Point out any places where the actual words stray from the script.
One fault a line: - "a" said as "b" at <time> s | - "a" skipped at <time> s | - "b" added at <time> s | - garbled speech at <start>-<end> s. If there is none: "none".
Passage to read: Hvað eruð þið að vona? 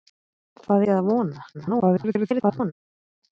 - "eruð" skipped at 0.8 s
- garbled speech at 1.5-2.7 s